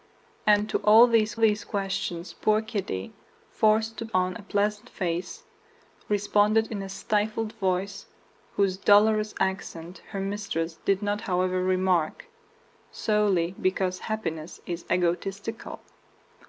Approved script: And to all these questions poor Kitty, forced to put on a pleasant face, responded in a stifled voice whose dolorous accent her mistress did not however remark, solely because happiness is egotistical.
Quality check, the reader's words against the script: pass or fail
fail